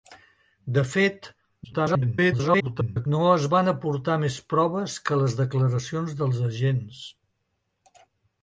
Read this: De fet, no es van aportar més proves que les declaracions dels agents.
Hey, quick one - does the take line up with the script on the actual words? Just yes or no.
no